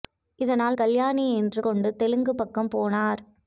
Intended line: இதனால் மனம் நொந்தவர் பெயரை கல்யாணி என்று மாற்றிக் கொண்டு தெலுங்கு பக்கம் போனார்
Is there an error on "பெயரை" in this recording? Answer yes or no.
yes